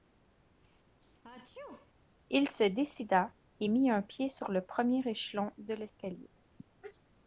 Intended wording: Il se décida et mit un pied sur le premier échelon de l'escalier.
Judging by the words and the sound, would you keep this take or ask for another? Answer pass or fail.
fail